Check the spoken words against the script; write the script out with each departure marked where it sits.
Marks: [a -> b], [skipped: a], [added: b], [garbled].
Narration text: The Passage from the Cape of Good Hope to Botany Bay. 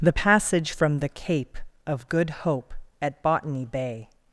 The Passage from the Cape of Good Hope [to -> at] Botany Bay.